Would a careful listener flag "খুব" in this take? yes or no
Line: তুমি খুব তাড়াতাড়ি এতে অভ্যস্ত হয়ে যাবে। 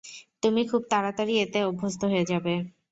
no